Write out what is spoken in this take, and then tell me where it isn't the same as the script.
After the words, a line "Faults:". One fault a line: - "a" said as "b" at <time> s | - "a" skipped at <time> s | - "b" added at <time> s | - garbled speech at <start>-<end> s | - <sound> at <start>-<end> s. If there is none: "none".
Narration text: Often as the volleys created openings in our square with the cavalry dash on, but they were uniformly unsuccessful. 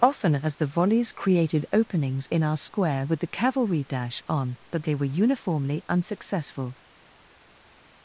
Often as the volleys created openings in our square with the cavalry dash on, but they were uniformly unsuccessful.
Faults:
none